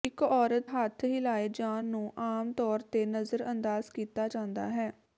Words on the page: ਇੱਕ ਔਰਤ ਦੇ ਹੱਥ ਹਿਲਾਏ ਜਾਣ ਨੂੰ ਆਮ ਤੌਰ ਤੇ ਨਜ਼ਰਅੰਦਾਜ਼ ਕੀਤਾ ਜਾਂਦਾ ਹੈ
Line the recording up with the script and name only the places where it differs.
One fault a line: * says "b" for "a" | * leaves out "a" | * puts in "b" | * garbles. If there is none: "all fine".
* leaves out "ਦੇ"